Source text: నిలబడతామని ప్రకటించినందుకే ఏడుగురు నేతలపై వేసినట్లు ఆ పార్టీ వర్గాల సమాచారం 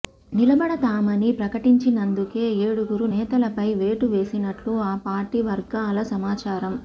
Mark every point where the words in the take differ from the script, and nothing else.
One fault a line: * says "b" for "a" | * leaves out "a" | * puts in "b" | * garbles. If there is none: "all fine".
* puts in "వేటు"